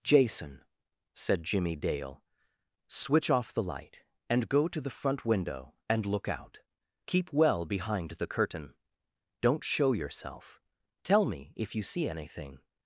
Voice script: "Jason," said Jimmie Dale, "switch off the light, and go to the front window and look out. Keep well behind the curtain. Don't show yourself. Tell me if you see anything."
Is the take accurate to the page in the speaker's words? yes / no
yes